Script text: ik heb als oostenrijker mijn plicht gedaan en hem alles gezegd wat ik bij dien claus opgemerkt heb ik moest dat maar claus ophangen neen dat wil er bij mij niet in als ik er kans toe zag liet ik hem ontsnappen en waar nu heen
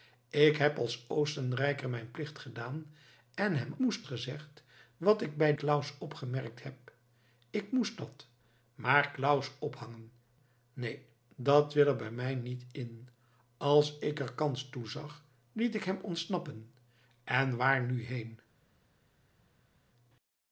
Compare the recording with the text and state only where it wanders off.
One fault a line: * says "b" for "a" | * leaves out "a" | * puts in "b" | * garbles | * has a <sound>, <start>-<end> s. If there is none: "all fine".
* says "moest" for "alles"
* leaves out "dien"